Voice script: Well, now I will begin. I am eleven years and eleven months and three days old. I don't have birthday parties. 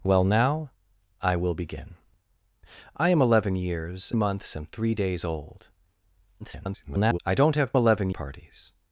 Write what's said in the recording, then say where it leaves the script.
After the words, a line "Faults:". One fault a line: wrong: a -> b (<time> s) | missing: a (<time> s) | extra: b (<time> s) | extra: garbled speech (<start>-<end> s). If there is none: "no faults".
Well, now I will begin. I am eleven years months and three days old. [garbled] I don't have eleven parties.
Faults:
missing: and eleven (4.1 s)
extra: garbled speech (6.4-7.2 s)
wrong: birthday -> eleven (7.8 s)